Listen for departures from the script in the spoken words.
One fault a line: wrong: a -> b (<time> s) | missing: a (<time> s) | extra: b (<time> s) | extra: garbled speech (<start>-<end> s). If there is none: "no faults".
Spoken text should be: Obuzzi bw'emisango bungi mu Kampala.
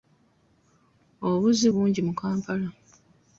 missing: bw'emisango (1.7 s)